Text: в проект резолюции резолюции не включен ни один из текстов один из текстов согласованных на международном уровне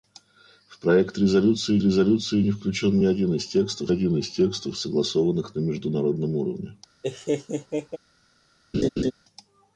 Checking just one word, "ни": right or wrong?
right